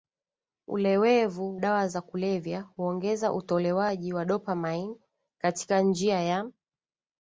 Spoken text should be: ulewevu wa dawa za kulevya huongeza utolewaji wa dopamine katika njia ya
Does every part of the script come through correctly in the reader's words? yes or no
no